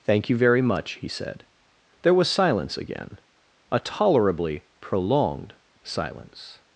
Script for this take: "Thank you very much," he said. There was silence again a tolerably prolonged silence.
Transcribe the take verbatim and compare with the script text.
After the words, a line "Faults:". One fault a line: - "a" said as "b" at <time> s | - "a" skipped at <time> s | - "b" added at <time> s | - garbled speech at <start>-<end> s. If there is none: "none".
"Thank you very much," he said. There was silence again a tolerably prolonged silence.
Faults:
none